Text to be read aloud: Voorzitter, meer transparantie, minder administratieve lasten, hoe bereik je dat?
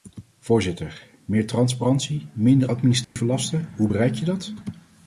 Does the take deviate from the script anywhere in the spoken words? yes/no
no